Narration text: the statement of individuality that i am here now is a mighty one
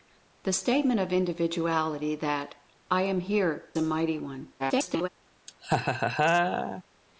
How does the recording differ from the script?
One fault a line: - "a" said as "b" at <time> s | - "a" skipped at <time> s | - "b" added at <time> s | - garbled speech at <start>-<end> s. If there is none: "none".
- "now is" skipped at 3.6 s
- garbled speech at 4.6-5.1 s